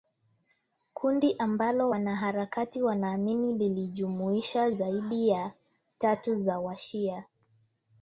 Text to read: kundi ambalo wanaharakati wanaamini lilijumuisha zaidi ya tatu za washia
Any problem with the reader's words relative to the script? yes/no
no